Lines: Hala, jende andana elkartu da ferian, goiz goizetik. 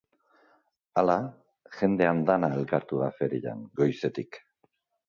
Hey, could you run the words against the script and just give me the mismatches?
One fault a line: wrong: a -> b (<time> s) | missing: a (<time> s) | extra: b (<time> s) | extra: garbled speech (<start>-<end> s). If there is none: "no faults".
missing: goiz (3.6 s)